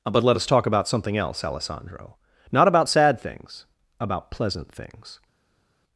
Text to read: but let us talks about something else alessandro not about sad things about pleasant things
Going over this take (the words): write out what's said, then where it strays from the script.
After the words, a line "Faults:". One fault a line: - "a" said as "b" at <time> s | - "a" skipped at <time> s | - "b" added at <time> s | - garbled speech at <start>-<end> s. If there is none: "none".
but let us talk about something else alessandro not about sad things about pleasant things
Faults:
- "talks" said as "talk" at 0.5 s